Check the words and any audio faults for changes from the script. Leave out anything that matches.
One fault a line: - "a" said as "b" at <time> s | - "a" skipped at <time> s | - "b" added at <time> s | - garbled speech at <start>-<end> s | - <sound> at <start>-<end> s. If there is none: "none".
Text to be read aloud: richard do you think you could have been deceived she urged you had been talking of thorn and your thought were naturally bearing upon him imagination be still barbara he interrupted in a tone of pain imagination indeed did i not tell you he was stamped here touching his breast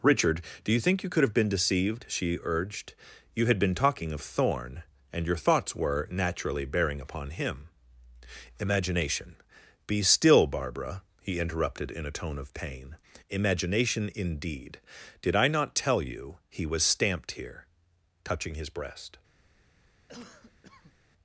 - "thought" said as "thoughts" at 5.4 s
- cough at 20.1-21.0 s